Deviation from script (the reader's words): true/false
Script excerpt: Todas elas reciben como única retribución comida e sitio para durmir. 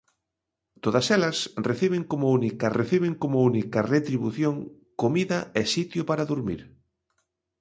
true